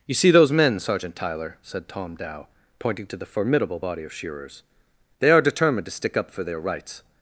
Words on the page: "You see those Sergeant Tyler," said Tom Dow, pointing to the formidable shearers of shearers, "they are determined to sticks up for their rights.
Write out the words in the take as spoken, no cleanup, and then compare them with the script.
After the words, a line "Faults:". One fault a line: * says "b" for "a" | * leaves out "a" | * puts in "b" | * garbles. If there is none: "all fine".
"You see those men, Sergeant Tyler," said Tom Dow, pointing to the formidable body of shearers, "they are determined to stick up for their rights.
Faults:
* puts in "men"
* says "body" for "shearers"
* says "stick" for "sticks"